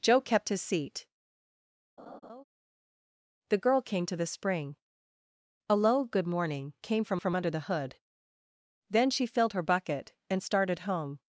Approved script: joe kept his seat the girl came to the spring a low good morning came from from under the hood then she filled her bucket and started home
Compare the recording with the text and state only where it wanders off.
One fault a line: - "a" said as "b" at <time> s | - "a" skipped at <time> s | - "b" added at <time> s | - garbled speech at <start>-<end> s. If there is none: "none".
none